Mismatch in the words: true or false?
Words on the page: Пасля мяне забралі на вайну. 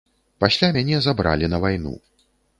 false